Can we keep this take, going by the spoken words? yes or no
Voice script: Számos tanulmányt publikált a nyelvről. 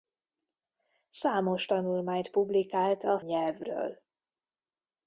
yes